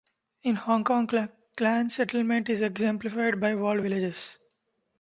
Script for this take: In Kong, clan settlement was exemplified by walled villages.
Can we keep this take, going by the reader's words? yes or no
no